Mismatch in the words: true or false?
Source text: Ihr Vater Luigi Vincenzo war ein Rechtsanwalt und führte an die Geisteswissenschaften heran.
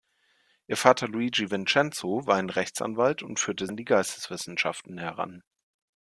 false